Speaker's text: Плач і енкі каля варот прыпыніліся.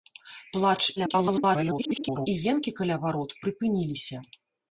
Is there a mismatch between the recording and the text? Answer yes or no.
yes